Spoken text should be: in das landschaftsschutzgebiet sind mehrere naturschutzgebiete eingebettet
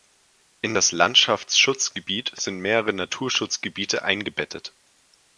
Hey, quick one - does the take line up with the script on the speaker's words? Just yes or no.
yes